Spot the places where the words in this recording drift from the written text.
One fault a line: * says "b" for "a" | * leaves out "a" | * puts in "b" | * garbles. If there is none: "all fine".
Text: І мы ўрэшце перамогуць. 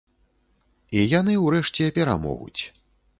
* says "яны" for "мы"